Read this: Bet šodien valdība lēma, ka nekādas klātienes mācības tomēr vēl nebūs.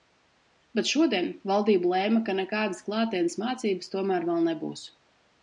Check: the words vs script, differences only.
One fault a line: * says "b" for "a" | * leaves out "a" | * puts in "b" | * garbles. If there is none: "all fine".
all fine